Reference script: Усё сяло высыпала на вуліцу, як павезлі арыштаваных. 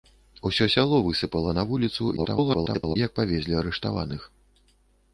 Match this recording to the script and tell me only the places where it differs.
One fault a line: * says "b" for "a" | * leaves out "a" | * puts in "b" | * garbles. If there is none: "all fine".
* garbles